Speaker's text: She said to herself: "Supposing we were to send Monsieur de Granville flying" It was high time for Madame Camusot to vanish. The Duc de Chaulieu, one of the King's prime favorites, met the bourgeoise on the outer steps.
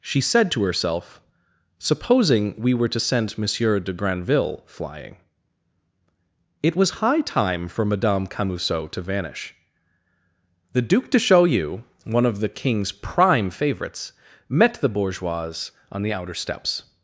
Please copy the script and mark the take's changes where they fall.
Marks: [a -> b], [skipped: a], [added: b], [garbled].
She said to herself: "Supposing we were to send Monsieur de Granville flying" It was high time for Madame Camusot to vanish. The Duc de Chaulieu, one of the King's prime favorites, met the bourgeoise on the outer steps.